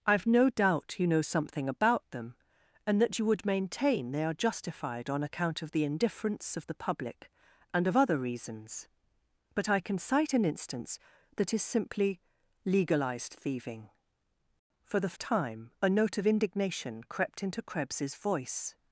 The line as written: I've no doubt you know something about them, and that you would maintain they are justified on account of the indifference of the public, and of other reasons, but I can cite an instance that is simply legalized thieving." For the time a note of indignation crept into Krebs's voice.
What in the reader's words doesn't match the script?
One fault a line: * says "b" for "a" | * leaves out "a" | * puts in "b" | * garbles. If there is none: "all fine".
all fine